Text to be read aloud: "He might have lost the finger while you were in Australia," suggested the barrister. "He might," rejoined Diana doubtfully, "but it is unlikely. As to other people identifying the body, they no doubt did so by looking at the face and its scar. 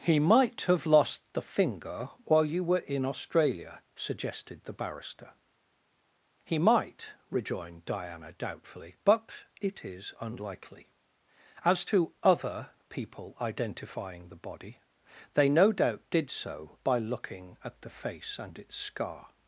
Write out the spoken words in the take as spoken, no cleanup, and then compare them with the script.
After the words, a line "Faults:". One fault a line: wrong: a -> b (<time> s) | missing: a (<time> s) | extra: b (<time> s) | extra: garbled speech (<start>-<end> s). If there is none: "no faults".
"He might have lost the finger while you were in Australia," suggested the barrister. "He might," rejoined Diana doubtfully, "but it is unlikely. As to other people identifying the body, they no doubt did so by looking at the face and its scar.
Faults:
no faults